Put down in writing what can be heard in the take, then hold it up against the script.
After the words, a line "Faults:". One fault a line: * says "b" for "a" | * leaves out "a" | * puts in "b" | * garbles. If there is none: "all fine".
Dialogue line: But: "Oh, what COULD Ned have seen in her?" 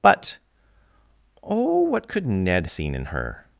But: "Oh, what COULD Ned seen in her?"
Faults:
* leaves out "have"